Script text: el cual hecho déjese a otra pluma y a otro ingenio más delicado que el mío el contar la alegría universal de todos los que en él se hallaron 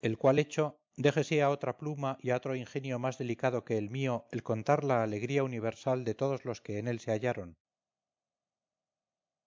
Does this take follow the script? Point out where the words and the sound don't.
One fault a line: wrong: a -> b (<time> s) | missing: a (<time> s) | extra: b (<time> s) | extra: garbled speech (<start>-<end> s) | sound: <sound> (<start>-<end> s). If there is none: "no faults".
no faults